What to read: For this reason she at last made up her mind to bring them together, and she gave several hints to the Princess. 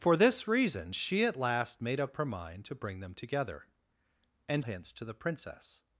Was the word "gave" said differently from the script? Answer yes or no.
yes